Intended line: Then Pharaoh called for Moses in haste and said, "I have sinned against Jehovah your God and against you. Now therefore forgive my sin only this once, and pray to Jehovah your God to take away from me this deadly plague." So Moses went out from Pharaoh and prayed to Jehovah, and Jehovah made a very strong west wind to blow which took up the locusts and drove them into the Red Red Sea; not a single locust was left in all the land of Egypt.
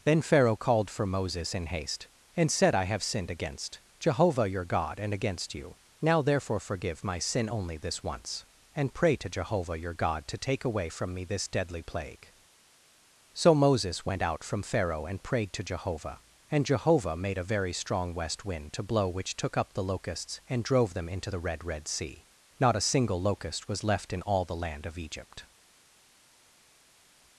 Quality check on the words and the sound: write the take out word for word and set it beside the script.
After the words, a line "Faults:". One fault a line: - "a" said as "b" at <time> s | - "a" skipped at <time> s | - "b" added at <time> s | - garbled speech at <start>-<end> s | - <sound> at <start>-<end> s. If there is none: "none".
Then Pharaoh called for Moses in haste and said, "I have sinned against Jehovah your God and against you. Now therefore forgive my sin only this once, and pray to Jehovah your God to take away from me this deadly plague." So Moses went out from Pharaoh and prayed to Jehovah, and Jehovah made a very strong west wind to blow which took up the locusts and drove them into the Red Red Sea; not a single locust was left in all the land of Egypt.
Faults:
none